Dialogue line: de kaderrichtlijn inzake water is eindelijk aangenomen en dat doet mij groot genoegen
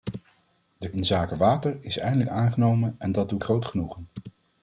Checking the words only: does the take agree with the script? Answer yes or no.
no